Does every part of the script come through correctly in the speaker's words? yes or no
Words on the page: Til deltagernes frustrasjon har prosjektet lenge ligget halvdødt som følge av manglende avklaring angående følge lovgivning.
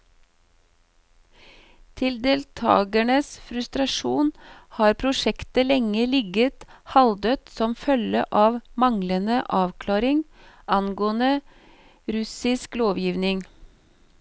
no